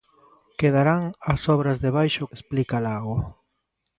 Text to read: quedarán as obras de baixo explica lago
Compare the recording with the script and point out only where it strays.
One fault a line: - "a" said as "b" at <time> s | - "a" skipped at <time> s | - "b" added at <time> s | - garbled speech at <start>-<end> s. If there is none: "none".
none